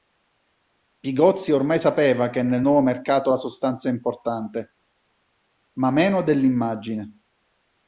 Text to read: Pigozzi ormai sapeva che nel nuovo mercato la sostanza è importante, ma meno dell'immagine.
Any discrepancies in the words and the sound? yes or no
no